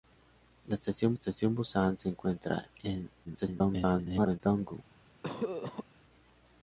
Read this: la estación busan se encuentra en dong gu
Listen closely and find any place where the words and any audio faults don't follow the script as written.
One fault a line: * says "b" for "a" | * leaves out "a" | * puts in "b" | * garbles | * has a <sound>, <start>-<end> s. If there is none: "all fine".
* puts in "estación"
* garbles
* has a cough, 5.2-5.9 s